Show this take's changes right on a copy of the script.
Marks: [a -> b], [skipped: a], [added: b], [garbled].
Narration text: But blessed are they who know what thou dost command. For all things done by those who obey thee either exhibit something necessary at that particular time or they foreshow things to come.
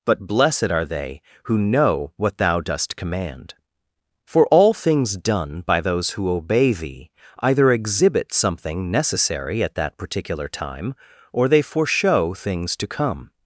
But blessed are they who know what thou dost command. For all things done by those who obey thee either exhibit something necessary at that particular time or they foreshow things to come.